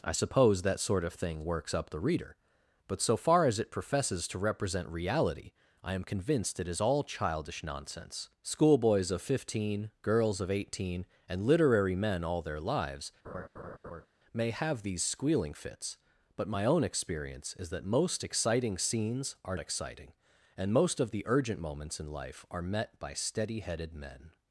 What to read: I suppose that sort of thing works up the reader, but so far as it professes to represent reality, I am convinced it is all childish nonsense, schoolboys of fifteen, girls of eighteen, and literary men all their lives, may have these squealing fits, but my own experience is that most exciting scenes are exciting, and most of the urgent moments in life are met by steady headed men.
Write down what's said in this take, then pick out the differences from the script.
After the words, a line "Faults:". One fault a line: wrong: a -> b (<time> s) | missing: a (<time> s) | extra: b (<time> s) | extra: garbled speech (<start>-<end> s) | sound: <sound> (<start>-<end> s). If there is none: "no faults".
I suppose that sort of thing works up the reader, but so far as it professes to represent reality, I am convinced it is all childish nonsense, schoolboys of fifteen, girls of eighteen, and literary men all their lives, may have these squealing fits, but my own experience is that most exciting scenes are exciting, and most of the urgent moments in life are met by steady headed men.
Faults:
sound: laugh (13.2-14.1 s)